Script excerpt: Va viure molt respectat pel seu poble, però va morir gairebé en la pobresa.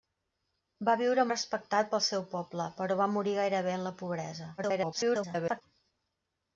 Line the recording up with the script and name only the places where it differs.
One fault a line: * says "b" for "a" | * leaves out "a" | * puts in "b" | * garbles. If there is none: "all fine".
* leaves out "molt"
* garbles